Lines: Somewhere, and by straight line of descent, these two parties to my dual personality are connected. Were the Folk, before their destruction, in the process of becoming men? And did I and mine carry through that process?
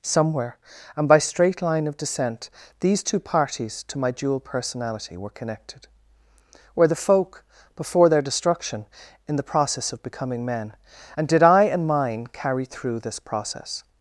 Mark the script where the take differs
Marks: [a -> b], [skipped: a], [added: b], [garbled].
Somewhere, and by straight line of descent, these two parties to my dual personality [are -> were] connected. Were the Folk, before their destruction, in the process of becoming men? And did I and mine carry through [that -> this] process?